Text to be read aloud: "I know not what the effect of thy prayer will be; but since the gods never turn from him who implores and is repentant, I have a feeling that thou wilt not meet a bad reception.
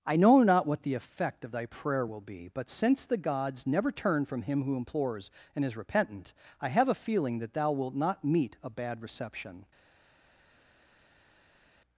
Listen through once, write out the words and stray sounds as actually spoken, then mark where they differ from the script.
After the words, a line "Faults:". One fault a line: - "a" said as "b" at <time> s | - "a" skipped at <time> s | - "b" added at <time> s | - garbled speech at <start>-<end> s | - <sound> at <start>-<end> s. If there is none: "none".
"I know not what the effect of thy prayer will be; but since the gods never turn from him who implores and is repentant, I have a feeling that thou wilt not meet a bad reception.
Faults:
none